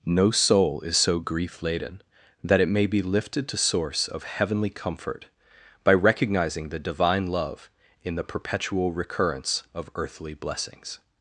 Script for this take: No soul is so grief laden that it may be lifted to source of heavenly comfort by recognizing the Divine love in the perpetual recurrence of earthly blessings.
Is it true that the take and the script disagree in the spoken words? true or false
false